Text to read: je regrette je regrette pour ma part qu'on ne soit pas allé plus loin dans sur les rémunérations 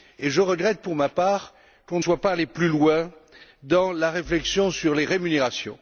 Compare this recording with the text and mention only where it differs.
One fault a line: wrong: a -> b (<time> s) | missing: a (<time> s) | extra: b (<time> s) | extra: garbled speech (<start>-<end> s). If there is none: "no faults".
missing: je regrette (0.8 s)
extra: la réflexion (3.9 s)